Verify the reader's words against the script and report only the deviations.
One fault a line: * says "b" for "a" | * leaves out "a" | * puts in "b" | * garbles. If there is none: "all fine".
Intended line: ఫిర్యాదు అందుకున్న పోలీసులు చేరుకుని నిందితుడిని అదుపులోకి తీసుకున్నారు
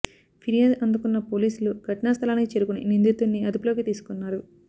* puts in "ఘటనా స్థలానికి"